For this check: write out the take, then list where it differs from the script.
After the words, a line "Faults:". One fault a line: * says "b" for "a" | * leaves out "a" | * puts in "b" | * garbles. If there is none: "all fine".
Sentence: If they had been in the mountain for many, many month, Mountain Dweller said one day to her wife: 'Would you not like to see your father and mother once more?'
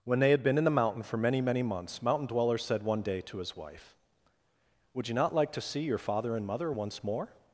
When they had been in the mountain for many, many months, Mountain Dweller said one day to his wife: 'Would you not like to see your father and mother once more?'
Faults:
* says "When" for "If"
* says "months" for "month"
* says "his" for "her"